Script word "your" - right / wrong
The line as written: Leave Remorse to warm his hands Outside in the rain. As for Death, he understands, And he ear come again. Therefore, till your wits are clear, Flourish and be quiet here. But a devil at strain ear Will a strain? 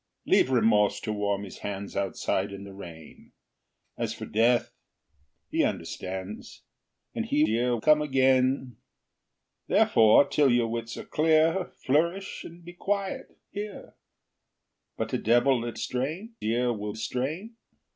right